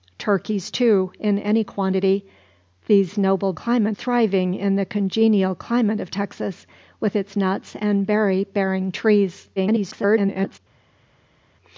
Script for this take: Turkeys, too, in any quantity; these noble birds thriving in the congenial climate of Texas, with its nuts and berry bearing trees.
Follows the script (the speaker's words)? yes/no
no